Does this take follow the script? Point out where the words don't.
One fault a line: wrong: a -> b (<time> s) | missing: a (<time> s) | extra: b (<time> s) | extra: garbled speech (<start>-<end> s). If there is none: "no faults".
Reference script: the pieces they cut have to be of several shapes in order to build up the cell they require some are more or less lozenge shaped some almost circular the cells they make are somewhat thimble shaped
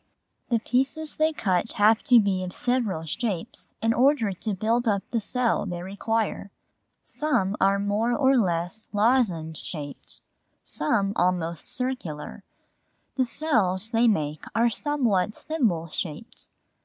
no faults